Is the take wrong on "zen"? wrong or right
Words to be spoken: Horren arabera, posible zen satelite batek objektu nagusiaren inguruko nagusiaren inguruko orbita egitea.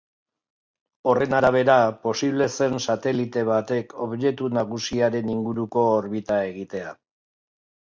right